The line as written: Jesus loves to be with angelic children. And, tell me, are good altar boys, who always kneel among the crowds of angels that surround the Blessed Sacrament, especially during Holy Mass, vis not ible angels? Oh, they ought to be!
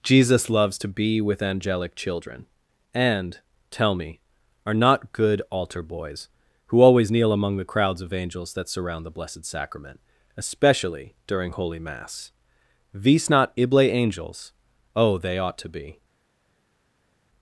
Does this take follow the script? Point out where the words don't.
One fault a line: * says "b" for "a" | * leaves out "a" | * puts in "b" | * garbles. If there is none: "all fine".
* puts in "not"